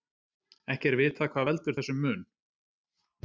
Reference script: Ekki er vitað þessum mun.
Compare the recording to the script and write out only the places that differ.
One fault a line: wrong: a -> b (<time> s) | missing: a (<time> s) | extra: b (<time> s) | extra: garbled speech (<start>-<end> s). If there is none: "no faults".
extra: hvað veldur (1.4 s)